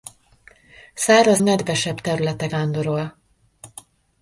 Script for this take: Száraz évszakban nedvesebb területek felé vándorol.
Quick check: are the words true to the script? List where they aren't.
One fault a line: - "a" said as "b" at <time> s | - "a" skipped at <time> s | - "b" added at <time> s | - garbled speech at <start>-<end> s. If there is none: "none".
- "évszakban" skipped at 1.4 s
- "felé" skipped at 2.5 s